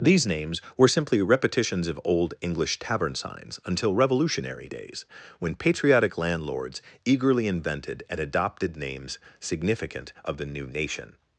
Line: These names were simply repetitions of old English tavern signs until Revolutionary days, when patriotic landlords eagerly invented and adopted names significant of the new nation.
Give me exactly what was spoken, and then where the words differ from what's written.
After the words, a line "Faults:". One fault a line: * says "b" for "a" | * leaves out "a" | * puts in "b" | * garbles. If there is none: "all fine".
These names were simply repetitions of old English tavern signs until Revolutionary days, when patriotic landlords eagerly invented and adopted names significant of the new nation.
Faults:
all fine